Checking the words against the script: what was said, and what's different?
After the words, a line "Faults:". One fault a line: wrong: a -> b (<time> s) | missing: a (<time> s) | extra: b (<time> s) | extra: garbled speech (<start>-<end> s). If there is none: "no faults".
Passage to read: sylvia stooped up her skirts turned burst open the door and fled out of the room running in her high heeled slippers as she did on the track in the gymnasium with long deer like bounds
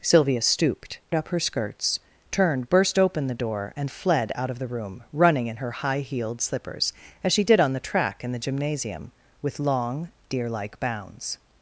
sylvia stooped up her skirts turned burst open the door and fled out of the room running in her high heeled slippers as she did on the track in the gymnasium with long deer like bounds
Faults:
no faults